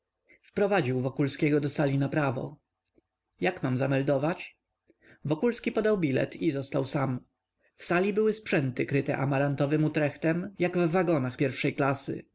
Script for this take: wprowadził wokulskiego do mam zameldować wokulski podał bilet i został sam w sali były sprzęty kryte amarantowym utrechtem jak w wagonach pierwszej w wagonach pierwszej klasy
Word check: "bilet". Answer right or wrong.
right